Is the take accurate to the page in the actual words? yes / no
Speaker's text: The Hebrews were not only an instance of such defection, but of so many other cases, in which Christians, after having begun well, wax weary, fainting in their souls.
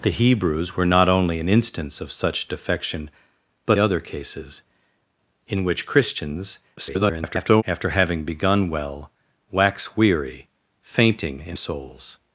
no